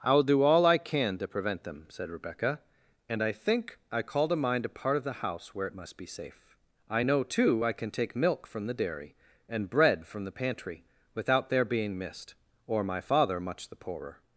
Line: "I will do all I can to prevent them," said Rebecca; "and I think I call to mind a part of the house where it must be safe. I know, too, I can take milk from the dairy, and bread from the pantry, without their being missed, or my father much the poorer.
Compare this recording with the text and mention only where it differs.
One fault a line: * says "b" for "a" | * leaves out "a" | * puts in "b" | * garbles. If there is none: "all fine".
all fine